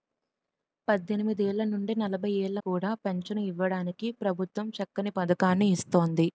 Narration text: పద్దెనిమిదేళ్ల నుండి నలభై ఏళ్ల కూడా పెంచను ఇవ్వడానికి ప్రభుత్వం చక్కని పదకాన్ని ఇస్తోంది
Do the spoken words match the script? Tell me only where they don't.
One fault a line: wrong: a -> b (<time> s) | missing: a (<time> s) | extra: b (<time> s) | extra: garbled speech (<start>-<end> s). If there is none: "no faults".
no faults